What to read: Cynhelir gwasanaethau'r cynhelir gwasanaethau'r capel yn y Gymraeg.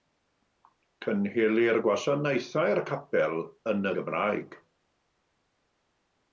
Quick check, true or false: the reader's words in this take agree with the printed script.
false